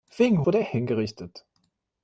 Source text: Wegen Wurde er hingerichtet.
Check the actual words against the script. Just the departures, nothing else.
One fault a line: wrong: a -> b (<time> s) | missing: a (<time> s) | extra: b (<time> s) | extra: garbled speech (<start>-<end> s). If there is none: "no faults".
no faults